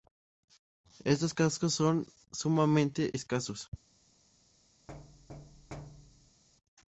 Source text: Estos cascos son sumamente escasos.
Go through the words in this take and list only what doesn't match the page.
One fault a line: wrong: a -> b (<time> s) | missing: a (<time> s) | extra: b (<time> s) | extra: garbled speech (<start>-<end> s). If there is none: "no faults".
no faults